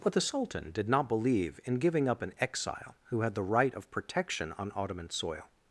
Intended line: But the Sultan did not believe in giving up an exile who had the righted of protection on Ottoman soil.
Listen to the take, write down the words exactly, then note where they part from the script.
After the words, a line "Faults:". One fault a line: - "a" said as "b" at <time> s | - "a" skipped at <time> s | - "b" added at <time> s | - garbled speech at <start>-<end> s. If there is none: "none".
But the Sultan did not believe in giving up an exile who had the right of protection on Ottoman soil.
Faults:
- "righted" said as "right" at 3.4 s